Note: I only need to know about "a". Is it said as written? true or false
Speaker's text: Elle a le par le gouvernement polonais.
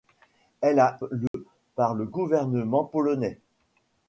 true